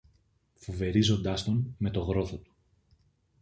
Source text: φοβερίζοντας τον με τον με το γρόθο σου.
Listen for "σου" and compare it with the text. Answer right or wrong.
wrong